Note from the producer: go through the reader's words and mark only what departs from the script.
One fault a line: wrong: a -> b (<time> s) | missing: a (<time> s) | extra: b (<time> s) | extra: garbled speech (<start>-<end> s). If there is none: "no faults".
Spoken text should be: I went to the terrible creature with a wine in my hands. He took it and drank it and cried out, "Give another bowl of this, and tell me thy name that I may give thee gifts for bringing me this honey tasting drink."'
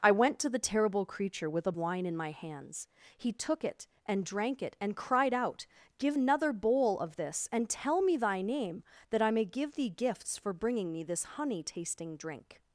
no faults